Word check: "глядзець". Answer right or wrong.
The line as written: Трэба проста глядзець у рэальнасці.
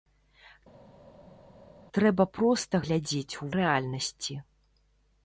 right